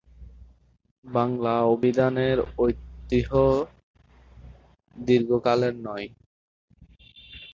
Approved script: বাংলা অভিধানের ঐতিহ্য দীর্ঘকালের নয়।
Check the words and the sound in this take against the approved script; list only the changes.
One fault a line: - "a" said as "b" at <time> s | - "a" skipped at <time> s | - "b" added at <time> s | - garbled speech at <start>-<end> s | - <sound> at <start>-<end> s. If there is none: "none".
none